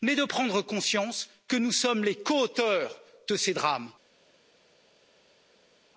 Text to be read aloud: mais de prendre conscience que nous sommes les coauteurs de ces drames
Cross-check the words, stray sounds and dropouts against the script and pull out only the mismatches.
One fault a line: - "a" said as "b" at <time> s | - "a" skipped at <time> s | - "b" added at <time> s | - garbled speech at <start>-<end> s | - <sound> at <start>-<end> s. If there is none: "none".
none